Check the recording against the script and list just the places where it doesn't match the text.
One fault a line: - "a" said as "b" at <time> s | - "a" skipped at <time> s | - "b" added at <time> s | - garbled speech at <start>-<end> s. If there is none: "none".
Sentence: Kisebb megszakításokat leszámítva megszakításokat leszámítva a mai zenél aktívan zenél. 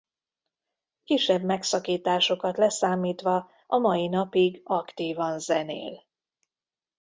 - "megszakításokat leszámítva" skipped at 3.5 s
- "zenél" said as "napig" at 4.1 s